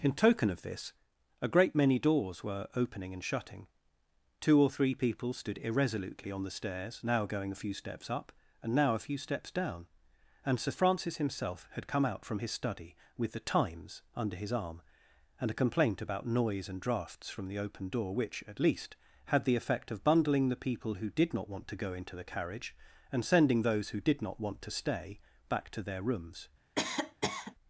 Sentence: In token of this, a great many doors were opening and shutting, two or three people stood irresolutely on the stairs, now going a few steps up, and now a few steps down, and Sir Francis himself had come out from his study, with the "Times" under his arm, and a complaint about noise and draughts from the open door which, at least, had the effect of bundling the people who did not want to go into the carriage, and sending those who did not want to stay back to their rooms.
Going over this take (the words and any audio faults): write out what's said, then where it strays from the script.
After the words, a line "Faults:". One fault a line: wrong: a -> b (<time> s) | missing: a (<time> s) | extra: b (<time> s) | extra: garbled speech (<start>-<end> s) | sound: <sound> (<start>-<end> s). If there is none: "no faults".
In token of this, a great many doors were opening and shutting, two or three people stood irresolutely on the stairs, now going a few steps up, and now a few steps down, and Sir Francis himself had come out from his study, with the "Times" under his arm, and a complaint about noise and draughts from the open door which, at least, had the effect of bundling the people who did not want to go into the carriage, and sending those who did not want to stay back to their rooms.
Faults:
sound: cough (26.8-27.6 s)